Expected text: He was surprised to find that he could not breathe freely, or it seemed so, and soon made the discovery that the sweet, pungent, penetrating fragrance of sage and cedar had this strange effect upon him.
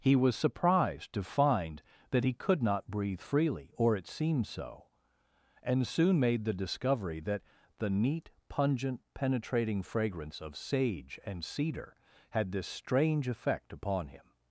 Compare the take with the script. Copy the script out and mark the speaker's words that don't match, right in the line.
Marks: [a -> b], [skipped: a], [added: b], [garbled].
He was surprised to find that he could not breathe freely, or it seemed so, and soon made the discovery that the [sweet, -> neat] pungent, penetrating fragrance of sage and cedar had this strange effect upon him.